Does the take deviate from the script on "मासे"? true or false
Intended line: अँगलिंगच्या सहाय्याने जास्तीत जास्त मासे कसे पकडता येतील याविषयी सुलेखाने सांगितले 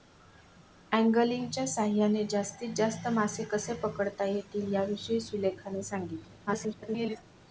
false